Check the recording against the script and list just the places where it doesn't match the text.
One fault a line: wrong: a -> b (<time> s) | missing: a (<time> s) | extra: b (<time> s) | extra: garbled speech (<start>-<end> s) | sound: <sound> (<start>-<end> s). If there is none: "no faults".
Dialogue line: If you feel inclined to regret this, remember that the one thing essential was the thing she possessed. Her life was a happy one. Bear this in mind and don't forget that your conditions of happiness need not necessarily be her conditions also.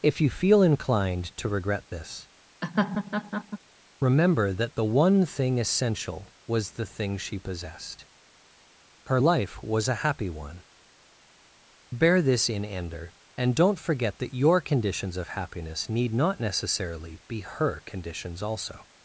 sound: laugh (2.6-3.6 s)
wrong: mind -> ender (12.7 s)